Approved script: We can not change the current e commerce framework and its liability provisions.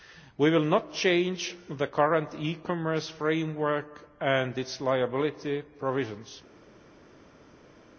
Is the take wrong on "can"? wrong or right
wrong